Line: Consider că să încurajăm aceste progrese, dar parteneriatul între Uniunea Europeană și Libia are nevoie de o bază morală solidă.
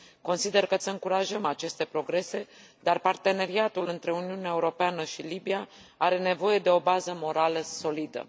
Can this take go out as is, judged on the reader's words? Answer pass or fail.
pass